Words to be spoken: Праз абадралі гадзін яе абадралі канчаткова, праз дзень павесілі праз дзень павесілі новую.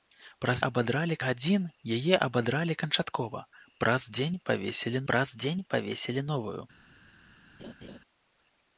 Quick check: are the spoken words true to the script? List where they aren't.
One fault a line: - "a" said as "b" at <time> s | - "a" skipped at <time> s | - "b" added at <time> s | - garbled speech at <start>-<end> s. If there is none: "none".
none